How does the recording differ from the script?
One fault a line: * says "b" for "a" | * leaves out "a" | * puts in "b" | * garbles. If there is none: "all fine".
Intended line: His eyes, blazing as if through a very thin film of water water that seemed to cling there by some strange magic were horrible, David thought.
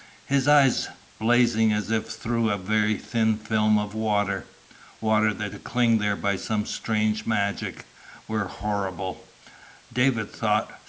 * leaves out "seemed"